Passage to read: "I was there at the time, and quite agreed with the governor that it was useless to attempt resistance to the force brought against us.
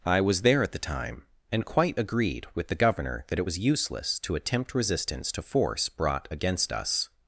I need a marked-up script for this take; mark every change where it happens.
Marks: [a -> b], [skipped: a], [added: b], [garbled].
"I was there at the time, and quite agreed with the governor that it was useless to attempt resistance to [skipped: the] force brought against us.